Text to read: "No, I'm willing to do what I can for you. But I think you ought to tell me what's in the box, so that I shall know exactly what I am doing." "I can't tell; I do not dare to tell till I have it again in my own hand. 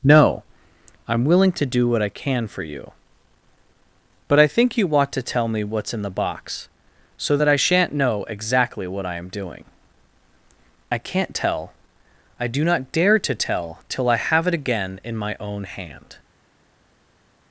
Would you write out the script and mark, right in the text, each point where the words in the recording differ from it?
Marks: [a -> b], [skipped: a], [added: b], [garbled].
"No, I'm willing to do what I can for you. But I think you ought to tell me what's in the box, so that I [shall -> shan't] know exactly what I am doing." "I can't tell; I do not dare to tell till I have it again in my own hand.